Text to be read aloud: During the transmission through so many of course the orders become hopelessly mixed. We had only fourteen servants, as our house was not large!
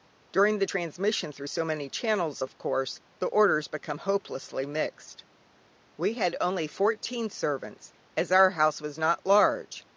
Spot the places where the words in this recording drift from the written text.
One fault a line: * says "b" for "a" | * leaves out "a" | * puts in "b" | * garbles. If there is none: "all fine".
* puts in "channels"